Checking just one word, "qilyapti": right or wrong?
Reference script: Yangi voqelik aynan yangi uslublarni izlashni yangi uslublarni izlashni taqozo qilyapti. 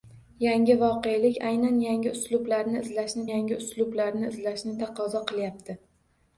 right